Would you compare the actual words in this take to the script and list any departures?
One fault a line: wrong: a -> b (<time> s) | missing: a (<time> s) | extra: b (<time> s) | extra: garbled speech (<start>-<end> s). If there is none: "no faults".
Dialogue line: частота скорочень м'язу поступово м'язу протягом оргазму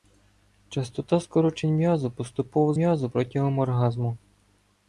no faults